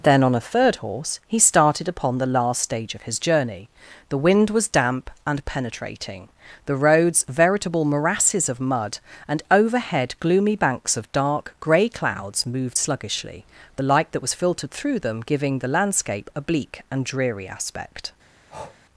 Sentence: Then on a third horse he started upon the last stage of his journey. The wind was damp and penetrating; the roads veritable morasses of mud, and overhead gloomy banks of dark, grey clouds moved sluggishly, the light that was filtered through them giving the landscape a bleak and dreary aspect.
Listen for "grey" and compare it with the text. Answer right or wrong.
right